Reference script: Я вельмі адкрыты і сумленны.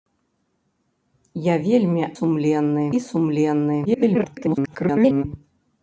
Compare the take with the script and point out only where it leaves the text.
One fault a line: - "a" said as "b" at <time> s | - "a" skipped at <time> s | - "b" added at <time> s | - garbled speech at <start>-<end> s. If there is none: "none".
- "адкрыты" said as "сумленны" at 2.2 s
- garbled speech at 3.9-5.2 s